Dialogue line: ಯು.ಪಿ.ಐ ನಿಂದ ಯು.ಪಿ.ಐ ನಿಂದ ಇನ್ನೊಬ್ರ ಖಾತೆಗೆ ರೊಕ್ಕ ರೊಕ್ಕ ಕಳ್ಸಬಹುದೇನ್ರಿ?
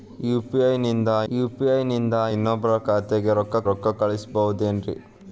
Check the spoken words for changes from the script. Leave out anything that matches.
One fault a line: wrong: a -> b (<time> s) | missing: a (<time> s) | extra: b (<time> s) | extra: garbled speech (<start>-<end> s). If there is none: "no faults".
no faults